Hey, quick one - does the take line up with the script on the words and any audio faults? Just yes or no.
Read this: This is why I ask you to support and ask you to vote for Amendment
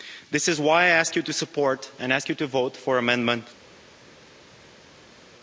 yes